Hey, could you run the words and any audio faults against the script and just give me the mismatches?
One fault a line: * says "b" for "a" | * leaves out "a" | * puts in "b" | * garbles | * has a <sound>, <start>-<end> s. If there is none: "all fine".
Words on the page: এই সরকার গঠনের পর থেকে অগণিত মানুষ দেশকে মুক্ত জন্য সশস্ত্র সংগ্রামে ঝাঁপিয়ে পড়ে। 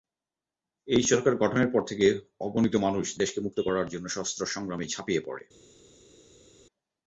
* puts in "করার"